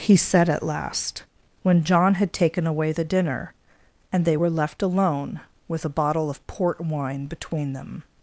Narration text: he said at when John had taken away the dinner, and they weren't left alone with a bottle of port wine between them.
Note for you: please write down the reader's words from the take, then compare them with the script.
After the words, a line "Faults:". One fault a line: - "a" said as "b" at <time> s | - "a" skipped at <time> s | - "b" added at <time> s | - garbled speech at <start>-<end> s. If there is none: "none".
he said at last, when John had taken away the dinner, and they were left alone with a bottle of port wine between them.
Faults:
- "last" added at 0.6 s
- "weren't" said as "were" at 4.3 s